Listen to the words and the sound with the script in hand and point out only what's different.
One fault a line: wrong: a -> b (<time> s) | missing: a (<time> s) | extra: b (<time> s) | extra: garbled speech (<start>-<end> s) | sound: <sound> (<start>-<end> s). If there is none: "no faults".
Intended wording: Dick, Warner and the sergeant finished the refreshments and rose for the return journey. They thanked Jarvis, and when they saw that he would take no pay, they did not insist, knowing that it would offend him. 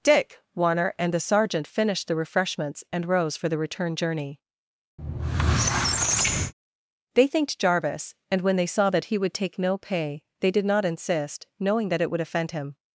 sound: squeak (5.0-6.5 s)